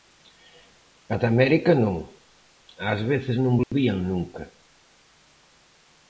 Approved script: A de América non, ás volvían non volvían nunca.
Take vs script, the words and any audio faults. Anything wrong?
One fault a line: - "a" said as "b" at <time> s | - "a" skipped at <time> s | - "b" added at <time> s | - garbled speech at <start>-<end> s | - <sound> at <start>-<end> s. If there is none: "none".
- "volvían" said as "veces" at 3.1 s
- dropout at 3.6-3.7 s